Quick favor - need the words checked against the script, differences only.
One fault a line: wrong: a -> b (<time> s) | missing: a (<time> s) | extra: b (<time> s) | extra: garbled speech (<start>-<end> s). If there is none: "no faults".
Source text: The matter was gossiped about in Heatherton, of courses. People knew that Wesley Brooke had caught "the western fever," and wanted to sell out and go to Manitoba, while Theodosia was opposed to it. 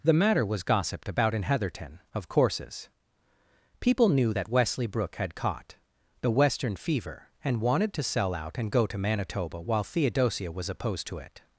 no faults